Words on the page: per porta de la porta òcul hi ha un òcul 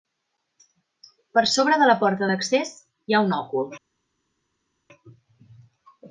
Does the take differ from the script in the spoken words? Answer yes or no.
yes